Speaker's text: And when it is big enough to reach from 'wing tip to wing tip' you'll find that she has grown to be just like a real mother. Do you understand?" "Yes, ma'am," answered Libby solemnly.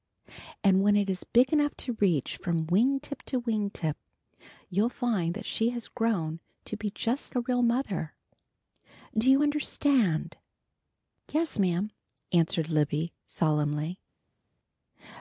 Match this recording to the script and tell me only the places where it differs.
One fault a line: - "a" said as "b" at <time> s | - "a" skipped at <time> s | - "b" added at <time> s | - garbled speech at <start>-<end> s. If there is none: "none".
- "like" skipped at 7.3 s